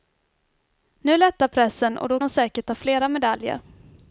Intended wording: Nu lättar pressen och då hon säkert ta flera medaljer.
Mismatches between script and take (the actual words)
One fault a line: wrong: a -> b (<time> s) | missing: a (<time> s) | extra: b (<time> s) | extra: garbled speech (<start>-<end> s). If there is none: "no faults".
no faults